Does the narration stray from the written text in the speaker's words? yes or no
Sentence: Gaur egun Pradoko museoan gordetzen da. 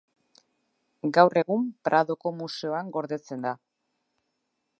no